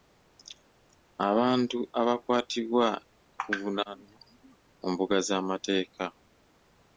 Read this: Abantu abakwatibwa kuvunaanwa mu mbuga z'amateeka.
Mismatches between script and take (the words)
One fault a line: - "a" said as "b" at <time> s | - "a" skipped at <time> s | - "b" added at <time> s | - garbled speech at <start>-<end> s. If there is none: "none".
none